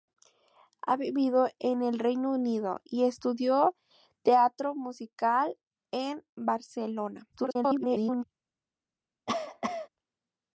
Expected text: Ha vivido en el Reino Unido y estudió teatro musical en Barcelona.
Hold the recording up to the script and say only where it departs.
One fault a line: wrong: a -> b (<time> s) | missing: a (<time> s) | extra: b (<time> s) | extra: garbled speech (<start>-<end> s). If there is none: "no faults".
extra: garbled speech (7.3-8.2 s)